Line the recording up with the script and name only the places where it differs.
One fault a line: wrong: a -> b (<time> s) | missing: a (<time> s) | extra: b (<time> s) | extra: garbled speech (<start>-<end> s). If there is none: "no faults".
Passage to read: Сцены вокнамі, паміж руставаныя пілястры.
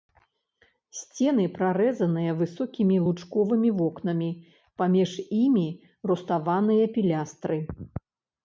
extra: прарэзаныя высокімі лучковымі (1.6 s)
extra: імі (5.4 s)